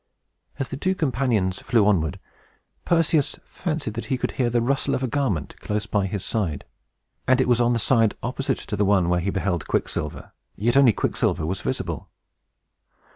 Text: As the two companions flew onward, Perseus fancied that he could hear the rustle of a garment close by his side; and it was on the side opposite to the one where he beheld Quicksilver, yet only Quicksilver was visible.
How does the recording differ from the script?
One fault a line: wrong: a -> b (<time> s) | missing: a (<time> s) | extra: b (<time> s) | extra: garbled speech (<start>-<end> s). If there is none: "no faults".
no faults